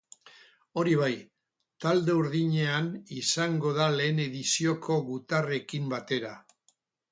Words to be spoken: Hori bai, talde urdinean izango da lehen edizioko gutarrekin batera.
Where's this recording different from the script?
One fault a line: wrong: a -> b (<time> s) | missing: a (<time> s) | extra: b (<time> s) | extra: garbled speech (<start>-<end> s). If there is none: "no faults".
no faults